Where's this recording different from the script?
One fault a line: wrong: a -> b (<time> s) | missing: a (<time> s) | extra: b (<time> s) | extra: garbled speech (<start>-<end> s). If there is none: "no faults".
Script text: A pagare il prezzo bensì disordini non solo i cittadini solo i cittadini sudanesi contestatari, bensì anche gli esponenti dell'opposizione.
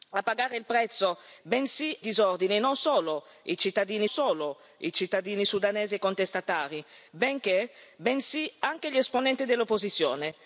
no faults